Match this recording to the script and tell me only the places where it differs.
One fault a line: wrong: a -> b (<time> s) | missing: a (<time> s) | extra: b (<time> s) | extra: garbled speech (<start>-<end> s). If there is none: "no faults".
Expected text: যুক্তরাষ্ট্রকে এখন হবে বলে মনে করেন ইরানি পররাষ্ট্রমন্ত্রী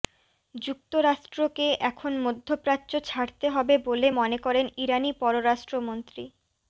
extra: মধ্যপ্রাচ্য ছাড়তে (2.2 s)